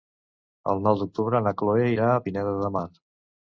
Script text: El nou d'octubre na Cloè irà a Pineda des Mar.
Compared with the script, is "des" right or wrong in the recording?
wrong